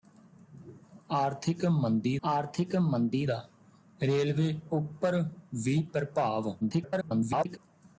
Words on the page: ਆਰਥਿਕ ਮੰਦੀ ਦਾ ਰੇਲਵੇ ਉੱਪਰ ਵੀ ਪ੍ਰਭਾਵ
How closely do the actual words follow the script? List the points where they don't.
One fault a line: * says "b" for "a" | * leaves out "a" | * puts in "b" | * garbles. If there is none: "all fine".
* puts in "ਆਰਥਿਕ ਮੰਦੀ"
* garbles